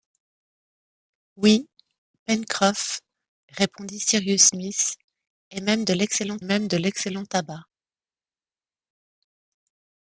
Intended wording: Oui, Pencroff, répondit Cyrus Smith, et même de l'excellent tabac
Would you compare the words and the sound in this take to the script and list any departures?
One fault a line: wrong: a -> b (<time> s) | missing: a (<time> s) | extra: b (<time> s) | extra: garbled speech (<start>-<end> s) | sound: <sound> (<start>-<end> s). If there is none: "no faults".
extra: même de l'excellent (6.4 s)